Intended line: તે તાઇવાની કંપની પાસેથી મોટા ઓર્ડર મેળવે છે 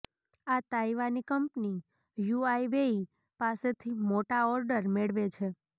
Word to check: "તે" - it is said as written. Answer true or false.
false